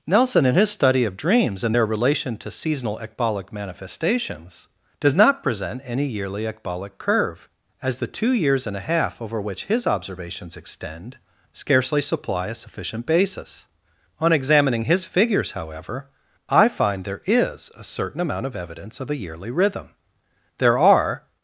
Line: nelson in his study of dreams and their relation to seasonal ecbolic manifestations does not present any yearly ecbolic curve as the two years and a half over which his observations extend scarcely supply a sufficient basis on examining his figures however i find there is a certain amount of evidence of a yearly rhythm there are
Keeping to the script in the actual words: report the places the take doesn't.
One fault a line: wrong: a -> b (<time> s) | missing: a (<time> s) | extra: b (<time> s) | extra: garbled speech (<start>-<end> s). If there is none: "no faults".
no faults